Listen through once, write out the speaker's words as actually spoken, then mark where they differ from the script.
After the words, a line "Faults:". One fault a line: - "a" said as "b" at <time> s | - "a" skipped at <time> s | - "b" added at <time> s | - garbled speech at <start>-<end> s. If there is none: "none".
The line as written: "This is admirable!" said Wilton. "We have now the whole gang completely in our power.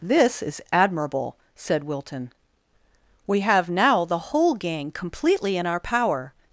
"This is admirable!" said Wilton. "We have now the whole gang completely in our power.
Faults:
none